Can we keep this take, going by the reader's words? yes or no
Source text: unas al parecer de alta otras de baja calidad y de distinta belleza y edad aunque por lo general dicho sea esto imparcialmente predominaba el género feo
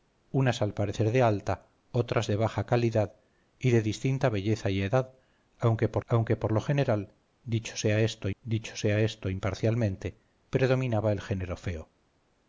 no